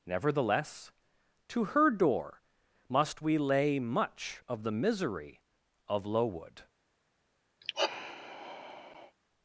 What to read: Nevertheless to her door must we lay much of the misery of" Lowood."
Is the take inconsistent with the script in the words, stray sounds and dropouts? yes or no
yes